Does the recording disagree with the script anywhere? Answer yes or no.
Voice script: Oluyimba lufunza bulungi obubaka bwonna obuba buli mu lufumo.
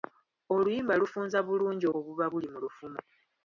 yes